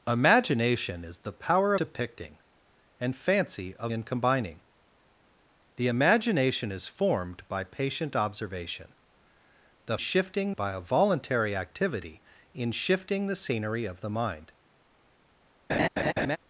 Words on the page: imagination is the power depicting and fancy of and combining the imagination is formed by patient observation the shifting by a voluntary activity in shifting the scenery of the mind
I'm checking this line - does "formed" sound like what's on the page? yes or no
yes